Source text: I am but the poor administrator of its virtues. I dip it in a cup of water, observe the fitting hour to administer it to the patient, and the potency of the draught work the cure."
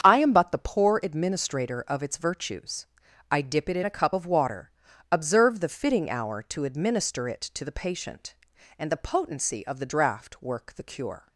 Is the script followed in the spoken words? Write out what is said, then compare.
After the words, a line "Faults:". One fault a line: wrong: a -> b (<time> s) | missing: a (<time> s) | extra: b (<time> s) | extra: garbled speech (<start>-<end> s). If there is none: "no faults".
I am but the poor administrator of its virtues. I dip it in a cup of water, observe the fitting hour to administer it to the patient, and the potency of the draught work the cure."
Faults:
no faults